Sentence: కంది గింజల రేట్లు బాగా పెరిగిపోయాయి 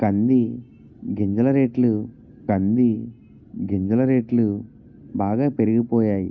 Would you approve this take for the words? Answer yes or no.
no